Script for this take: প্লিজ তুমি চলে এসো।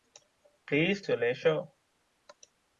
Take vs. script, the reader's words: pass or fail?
fail